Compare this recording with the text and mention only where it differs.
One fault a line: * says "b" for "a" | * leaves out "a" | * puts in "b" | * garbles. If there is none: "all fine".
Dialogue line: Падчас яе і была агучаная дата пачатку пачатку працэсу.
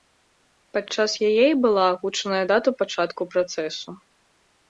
* leaves out "пачатку"